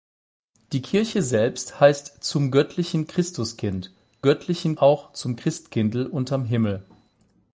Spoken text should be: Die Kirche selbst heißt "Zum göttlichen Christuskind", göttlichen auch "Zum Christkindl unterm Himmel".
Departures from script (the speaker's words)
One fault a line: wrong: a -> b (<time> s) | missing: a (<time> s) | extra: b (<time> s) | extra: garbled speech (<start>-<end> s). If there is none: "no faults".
no faults